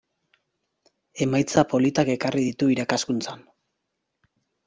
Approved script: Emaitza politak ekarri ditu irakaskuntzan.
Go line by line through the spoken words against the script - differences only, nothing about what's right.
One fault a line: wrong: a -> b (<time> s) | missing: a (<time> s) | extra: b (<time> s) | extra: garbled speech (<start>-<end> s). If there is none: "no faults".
no faults